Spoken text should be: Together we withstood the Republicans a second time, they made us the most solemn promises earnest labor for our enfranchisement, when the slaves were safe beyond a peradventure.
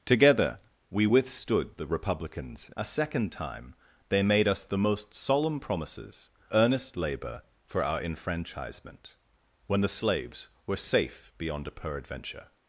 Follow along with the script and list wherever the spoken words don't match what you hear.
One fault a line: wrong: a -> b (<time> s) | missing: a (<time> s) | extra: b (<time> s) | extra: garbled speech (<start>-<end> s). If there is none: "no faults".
no faults